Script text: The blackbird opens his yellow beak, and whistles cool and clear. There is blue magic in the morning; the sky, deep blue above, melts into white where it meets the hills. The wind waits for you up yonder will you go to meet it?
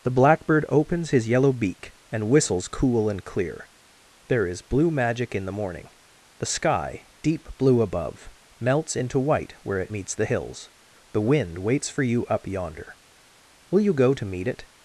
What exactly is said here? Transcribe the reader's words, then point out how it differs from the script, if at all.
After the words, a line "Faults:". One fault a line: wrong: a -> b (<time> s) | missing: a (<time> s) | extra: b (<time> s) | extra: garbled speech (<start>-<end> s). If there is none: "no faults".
The blackbird opens his yellow beak, and whistles cool and clear. There is blue magic in the morning; the sky, deep blue above, melts into white where it meets the hills. The wind waits for you up yonder will you go to meet it?
Faults:
no faults